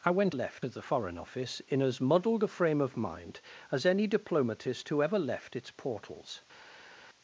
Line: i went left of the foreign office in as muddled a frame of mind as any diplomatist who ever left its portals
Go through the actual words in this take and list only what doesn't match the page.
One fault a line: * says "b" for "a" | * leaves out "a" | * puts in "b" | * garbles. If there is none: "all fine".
all fine